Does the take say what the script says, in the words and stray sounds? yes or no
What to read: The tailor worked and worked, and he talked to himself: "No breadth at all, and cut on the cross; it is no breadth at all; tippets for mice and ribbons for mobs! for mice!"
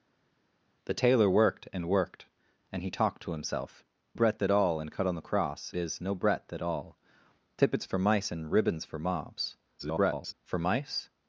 no